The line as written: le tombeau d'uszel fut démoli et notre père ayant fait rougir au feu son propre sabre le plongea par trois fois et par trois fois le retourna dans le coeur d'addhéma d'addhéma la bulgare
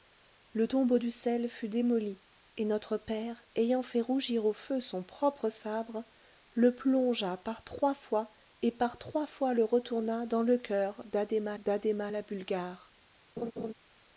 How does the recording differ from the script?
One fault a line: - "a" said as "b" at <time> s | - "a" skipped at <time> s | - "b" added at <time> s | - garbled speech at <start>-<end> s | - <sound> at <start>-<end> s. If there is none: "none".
- laugh at 13.4-13.7 s